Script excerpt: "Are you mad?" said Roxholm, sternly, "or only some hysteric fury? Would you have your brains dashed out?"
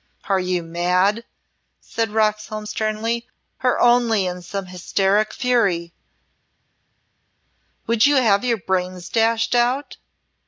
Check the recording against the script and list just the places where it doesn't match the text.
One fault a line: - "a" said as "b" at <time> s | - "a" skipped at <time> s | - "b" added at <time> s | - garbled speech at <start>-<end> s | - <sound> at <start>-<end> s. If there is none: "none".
- "in" added at 4.3 s